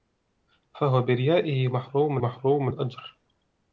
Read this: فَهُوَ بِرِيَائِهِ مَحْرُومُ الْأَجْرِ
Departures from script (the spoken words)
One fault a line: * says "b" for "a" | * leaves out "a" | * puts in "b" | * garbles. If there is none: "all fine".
* puts in "مَحْرُومُ"